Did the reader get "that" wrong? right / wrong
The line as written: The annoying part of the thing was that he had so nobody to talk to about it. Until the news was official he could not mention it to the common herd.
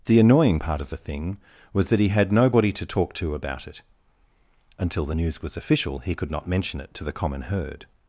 right